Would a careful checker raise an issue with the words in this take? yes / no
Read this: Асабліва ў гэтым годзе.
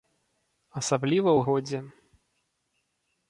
yes